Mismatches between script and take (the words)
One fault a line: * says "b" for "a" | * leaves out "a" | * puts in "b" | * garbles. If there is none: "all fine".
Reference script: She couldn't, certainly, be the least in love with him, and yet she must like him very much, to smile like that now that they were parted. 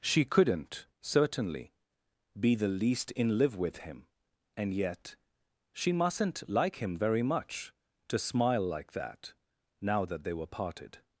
* says "live" for "love"
* says "mustn't" for "must"